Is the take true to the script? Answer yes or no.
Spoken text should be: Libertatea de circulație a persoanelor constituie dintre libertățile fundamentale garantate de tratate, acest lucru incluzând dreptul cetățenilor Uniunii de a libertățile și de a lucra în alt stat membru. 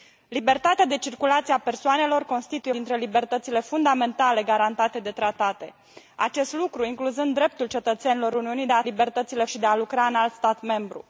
yes